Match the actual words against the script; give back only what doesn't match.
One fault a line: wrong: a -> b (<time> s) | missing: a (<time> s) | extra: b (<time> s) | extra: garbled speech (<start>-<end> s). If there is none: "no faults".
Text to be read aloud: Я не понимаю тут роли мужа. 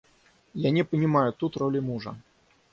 no faults